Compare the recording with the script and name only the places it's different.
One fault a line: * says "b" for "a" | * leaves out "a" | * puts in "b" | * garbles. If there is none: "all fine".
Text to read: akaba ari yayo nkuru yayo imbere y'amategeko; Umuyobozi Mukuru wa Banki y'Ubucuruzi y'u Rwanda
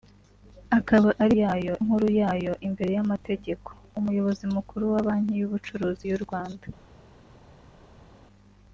all fine